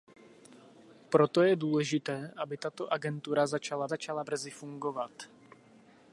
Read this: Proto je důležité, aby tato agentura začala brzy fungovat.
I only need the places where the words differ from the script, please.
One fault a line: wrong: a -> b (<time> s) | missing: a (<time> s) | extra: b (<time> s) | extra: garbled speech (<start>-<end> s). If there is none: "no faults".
extra: začala (3.9 s)